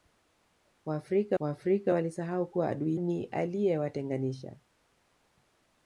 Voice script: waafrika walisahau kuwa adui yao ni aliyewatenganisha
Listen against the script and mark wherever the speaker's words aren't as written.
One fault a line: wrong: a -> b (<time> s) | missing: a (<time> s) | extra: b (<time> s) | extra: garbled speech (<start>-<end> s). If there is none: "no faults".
extra: waafrika (1.4 s)
missing: yao (3.0 s)